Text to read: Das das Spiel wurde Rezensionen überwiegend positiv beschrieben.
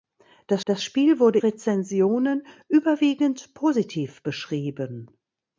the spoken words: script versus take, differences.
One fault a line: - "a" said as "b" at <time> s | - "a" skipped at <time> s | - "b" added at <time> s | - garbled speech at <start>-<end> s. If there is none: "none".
none